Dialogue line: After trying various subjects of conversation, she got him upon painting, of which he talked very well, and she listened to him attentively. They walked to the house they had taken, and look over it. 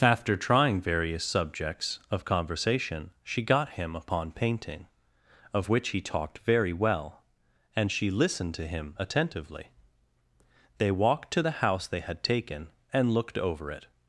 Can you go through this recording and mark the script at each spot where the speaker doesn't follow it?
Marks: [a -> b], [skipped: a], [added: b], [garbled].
After trying various subjects of conversation, she got him upon painting, of which he talked very well, and she listened to him attentively. They walked to the house they had taken, and [look -> looked] over it.